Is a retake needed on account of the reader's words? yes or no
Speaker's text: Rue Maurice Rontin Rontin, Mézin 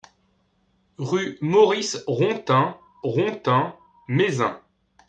no